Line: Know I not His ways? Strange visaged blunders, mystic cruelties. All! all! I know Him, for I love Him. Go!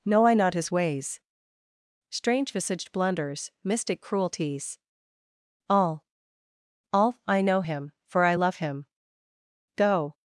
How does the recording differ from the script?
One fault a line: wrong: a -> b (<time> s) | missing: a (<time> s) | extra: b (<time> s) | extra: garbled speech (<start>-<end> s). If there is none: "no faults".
no faults